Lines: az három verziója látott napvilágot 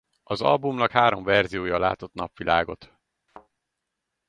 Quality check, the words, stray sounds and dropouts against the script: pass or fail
fail